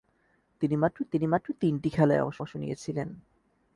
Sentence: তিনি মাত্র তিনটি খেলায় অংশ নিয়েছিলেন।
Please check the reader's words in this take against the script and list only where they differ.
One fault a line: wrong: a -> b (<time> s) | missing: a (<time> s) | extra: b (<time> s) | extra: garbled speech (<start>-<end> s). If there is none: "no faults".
extra: তিনি মাত্র (1.1 s)
extra: অংশ (2.4 s)